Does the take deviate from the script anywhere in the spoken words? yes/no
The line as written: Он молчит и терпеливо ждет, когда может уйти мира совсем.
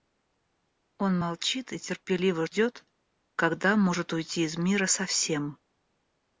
yes